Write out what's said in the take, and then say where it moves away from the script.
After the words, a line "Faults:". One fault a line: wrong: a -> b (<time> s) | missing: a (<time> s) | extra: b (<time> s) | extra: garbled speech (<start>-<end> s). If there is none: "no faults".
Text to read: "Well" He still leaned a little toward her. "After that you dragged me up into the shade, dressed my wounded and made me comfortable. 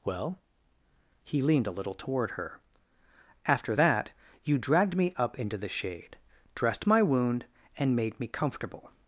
"Well" He leaned a little toward her. "After that you dragged me up into the shade, dressed my wound and made me comfortable.
Faults:
missing: still (1.4 s)
wrong: wounded -> wound (7.0 s)